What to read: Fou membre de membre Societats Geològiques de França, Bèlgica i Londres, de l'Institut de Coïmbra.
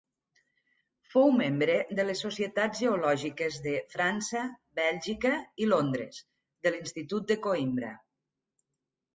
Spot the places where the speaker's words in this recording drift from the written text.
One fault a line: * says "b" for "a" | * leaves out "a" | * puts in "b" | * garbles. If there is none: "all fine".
* says "les" for "membre"